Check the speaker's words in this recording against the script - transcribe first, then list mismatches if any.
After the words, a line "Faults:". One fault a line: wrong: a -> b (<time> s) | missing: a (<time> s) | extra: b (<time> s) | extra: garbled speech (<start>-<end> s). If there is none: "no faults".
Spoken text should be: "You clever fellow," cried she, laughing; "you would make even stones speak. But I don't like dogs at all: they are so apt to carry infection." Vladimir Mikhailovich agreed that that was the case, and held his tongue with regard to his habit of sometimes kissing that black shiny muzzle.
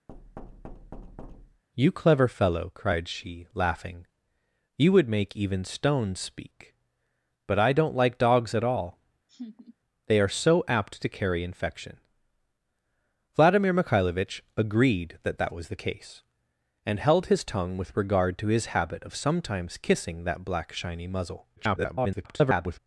"You clever fellow," cried she, laughing; "you would make even stones speak. But I don't like dogs at all: they are so apt to carry infection." Vladimir Mikhailovich agreed that that was the case, and held his tongue with regard to his habit of sometimes kissing that black shiny muzzle. [garbled]
Faults:
extra: garbled speech (21.6-22.8 s)